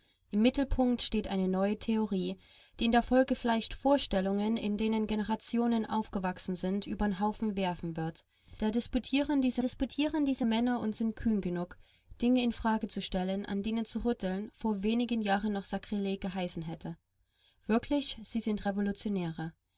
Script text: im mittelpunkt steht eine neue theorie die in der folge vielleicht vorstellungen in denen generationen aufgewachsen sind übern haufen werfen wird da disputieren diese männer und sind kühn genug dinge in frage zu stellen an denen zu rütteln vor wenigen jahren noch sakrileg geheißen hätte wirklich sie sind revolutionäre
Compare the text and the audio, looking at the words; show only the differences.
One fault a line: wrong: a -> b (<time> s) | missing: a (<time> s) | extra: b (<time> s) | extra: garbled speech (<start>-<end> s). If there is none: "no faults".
extra: disputieren diese (9.6 s)